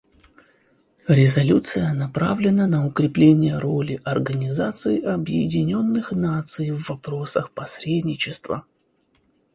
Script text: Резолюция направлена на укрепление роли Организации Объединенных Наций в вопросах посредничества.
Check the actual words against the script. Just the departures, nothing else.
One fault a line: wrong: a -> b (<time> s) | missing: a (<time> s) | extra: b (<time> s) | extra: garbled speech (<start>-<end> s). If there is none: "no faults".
no faults